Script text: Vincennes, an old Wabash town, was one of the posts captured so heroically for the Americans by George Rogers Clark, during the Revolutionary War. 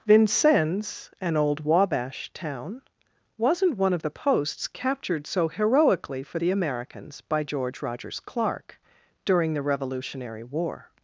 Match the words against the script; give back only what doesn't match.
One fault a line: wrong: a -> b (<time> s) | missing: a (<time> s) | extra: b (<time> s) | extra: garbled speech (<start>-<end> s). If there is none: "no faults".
wrong: was -> wasn't (3.4 s)